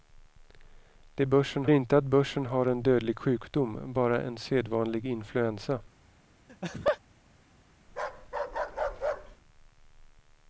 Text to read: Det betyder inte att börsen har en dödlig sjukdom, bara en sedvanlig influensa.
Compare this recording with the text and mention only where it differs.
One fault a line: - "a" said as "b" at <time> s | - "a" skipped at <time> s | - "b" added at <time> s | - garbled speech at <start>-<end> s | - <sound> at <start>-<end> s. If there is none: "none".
- "betyder" said as "börsen" at 1.2 s
- laugh at 6.5-7.0 s
- bark at 7.9-9.4 s